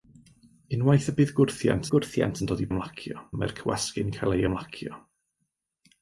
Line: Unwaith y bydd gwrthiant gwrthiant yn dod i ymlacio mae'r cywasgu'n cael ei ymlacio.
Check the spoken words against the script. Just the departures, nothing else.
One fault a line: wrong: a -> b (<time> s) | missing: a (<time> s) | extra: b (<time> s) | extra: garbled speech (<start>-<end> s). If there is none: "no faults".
no faults